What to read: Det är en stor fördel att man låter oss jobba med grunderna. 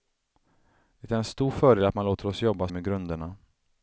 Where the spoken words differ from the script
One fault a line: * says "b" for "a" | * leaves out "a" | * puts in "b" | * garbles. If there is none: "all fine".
all fine